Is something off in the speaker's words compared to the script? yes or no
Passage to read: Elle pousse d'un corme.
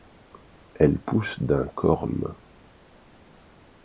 no